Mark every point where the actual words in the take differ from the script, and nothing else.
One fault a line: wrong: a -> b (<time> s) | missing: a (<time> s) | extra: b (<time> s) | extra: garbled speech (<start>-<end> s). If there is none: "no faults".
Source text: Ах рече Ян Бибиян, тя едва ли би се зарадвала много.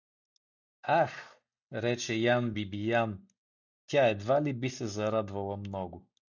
no faults